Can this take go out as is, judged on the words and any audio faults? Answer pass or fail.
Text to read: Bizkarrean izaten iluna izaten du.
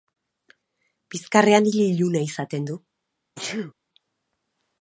fail